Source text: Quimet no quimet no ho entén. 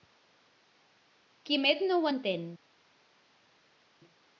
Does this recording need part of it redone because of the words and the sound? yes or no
yes